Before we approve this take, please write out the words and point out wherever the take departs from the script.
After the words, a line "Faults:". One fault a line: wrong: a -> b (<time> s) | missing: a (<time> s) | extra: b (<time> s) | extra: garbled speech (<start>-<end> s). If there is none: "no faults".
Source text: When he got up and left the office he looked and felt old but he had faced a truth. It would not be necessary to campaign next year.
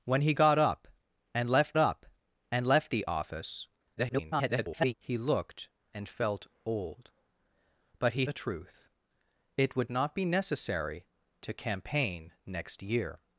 When he got up and left up and left the office [garbled] he looked and felt old but he a truth. It would not be necessary to campaign next year.
Faults:
extra: up and left (1.8 s)
extra: garbled speech (4.0-4.9 s)
missing: had faced (8.3 s)